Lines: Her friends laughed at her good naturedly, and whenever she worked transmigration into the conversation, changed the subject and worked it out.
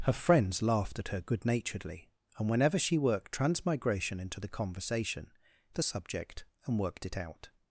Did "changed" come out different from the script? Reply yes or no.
yes